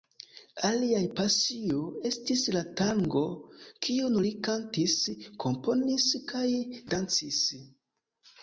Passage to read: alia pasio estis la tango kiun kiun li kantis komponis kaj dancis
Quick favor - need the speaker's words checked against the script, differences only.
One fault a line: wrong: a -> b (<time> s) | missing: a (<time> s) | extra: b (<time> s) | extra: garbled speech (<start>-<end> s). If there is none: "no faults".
missing: kiun (4.2 s)